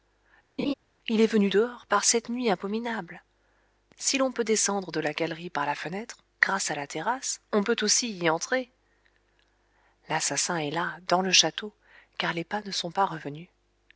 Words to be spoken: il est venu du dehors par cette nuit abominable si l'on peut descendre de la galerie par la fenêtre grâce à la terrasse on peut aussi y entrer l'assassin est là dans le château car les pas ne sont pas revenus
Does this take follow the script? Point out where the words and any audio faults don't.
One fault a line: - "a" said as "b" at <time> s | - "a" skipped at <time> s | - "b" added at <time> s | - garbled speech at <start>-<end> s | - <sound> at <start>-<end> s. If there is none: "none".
- laugh at 0.6-0.7 s
- "du" skipped at 1.5 s